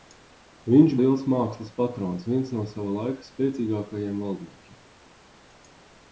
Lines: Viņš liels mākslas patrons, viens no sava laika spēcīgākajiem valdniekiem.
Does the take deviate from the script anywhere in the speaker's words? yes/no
no